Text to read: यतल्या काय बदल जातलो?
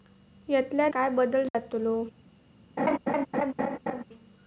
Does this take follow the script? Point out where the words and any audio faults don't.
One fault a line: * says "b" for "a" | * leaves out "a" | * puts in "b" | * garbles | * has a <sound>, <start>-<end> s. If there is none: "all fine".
* has a dropout, 1.5-1.5 s
* has a laugh, 2.8-4.0 s